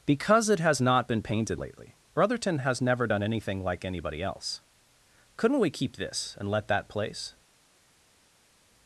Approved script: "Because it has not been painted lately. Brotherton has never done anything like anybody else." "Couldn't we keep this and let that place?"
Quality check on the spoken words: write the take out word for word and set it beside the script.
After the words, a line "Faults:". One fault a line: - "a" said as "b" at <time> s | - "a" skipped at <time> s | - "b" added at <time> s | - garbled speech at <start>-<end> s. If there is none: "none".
"Because it has not been painted lately. Brotherton has never done anything like anybody else." "Couldn't we keep this and let that place?"
Faults:
none